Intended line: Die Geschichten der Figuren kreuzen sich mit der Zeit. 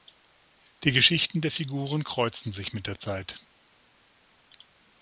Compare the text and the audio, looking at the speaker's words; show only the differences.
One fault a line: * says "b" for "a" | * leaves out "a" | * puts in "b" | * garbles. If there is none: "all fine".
all fine